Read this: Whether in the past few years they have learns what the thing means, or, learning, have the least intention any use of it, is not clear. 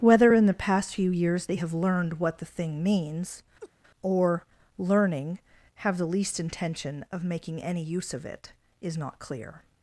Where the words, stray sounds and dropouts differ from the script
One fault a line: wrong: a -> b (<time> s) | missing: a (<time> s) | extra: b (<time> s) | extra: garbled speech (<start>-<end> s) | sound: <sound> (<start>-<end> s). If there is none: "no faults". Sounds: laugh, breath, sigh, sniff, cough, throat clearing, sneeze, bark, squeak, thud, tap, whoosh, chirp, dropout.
wrong: learns -> learned (1.7 s)
sound: laugh (3.6-3.7 s)
extra: of making (7.1 s)